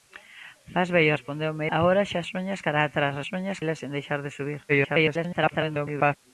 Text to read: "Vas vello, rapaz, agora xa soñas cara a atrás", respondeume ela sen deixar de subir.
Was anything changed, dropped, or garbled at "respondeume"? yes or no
yes